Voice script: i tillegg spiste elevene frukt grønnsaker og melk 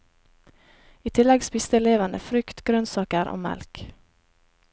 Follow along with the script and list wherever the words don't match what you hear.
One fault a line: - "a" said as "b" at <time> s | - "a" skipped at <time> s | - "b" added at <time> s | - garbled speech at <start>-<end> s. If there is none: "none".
none